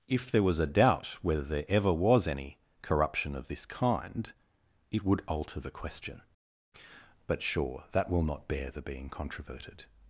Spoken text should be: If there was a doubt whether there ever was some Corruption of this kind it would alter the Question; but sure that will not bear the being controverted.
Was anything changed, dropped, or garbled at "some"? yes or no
yes